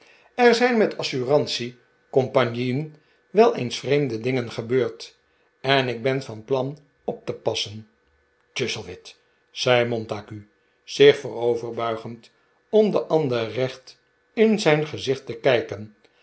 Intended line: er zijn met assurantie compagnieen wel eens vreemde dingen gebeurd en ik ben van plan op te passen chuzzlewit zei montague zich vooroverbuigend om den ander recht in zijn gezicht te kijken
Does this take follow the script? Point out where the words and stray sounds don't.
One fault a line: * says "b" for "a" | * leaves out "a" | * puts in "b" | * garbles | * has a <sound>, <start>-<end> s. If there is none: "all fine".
all fine